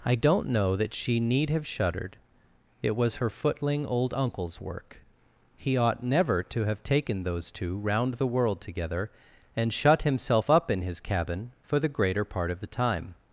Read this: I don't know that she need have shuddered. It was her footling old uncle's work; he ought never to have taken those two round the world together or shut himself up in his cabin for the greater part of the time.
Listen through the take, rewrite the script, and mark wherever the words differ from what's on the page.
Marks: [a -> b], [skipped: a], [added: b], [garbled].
I don't know that she need have shuddered. It was her footling old uncle's work; he ought never to have taken those two round the world together [or -> and] shut himself up in his cabin for the greater part of the time.